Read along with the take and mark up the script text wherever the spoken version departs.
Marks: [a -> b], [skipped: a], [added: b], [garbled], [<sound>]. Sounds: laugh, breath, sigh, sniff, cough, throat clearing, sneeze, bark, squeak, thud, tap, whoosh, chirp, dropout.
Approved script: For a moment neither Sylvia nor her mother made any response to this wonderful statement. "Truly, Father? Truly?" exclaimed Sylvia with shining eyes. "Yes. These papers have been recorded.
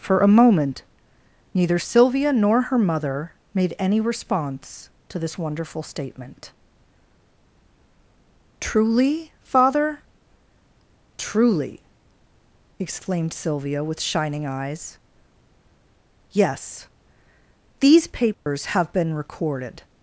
For a moment neither Sylvia nor her mother made any response to this wonderful statement. "Truly, Father? Truly?" exclaimed Sylvia with shining eyes. "Yes. These papers [dropout] have been recorded.